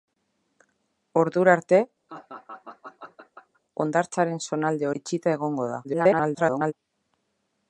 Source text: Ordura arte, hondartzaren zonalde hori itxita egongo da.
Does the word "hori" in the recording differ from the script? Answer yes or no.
yes